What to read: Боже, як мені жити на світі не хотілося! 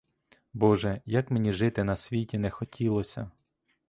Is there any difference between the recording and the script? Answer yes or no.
no